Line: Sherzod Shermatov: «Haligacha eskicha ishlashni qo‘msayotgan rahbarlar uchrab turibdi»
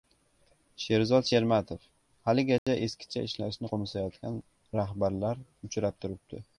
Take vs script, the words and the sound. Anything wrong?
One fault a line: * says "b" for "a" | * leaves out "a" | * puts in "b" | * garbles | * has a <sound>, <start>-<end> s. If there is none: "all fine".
* has a dropout, 2.6-2.7 s